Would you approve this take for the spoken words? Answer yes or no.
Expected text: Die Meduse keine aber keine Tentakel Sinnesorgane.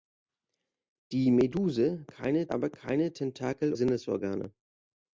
yes